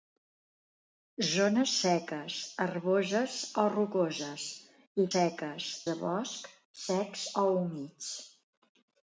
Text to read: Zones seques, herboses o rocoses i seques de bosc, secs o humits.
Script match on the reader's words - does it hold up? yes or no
yes